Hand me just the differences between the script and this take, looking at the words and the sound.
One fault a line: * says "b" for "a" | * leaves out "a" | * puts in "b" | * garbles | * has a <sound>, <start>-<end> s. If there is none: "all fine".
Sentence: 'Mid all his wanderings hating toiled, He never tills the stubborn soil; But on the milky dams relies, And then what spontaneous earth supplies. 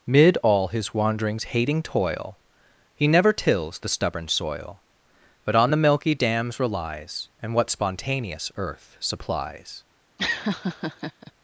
* says "toil" for "toiled"
* leaves out "then"
* has a laugh, 10.2-11.3 s